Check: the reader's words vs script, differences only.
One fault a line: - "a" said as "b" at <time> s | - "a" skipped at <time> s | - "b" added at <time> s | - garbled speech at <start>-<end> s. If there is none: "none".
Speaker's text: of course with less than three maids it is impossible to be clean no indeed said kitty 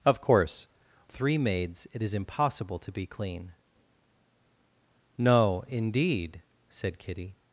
- "with less than" skipped at 0.7 s